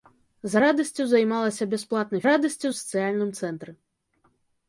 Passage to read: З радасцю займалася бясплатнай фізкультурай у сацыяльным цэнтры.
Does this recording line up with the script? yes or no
no